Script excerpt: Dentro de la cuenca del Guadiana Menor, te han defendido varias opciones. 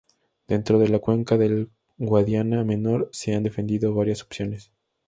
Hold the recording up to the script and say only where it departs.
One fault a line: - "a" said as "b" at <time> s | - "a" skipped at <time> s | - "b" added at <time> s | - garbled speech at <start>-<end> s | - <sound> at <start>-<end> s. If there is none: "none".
- "te" said as "se" at 3.1 s